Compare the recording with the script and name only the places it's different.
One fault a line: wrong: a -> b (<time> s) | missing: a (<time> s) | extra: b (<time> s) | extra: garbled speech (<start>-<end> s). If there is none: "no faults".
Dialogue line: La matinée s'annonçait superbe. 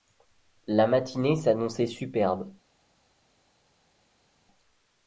no faults